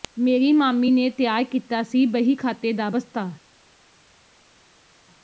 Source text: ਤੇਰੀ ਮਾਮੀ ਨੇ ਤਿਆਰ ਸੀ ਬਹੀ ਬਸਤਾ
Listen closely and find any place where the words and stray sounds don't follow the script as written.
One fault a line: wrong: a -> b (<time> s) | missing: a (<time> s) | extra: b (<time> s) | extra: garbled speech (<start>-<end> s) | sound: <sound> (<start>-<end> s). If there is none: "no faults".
wrong: ਤੇਰੀ -> ਮੇਰੀ (0.2 s)
extra: ਕੀਤਾ (1.5 s)
extra: ਖਾਤੇ ਦਾ (2.3 s)